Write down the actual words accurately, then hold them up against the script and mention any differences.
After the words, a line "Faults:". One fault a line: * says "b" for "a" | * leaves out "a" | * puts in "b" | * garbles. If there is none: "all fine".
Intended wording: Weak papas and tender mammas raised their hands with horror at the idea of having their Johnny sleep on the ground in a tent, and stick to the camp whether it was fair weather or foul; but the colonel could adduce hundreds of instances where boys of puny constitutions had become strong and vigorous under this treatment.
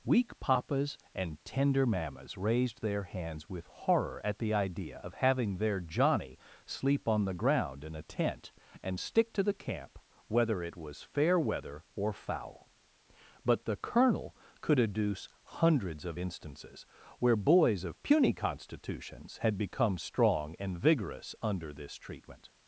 Weak papas and tender mammas raised their hands with horror at the idea of having their Johnny sleep on the ground in a tent, and stick to the camp whether it was fair weather or foul; but the colonel could adduce hundreds of instances where boys of puny constitutions had become strong and vigorous under this treatment.
Faults:
all fine